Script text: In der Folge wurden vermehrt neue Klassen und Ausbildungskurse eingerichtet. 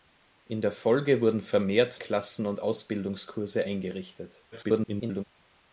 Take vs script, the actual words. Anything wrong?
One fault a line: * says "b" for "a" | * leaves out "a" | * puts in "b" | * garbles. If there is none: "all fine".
* leaves out "neue"
* garbles